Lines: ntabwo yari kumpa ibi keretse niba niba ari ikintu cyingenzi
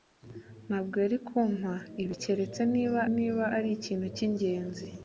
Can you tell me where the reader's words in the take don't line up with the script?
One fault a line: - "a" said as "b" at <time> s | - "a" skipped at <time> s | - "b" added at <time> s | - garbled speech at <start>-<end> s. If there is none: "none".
none